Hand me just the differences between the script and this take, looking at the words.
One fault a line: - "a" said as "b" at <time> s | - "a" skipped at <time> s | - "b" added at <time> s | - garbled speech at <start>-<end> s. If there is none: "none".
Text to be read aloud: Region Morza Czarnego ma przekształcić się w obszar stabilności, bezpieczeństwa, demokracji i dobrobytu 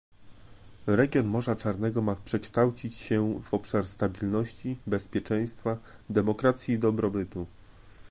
none